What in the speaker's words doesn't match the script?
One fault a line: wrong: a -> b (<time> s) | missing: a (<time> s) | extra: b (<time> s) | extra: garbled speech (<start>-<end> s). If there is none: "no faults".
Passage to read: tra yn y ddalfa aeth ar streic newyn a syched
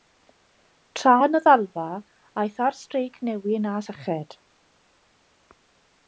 no faults